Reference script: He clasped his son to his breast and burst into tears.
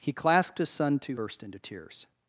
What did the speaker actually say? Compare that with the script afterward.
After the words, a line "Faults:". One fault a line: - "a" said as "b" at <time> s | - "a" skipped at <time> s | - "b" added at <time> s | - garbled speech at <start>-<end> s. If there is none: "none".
He clasped his son to burst into tears.
Faults:
- "his breast and" skipped at 1.2 s